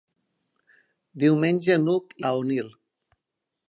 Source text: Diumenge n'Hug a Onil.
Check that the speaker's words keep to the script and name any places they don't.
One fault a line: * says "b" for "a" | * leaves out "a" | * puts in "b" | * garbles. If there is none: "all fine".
all fine